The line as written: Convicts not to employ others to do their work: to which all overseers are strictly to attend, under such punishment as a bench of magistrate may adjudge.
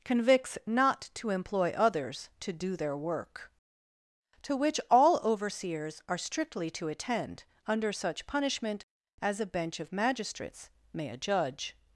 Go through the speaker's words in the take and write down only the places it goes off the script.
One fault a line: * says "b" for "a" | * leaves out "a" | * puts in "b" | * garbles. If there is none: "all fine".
* says "magistrates" for "magistrate"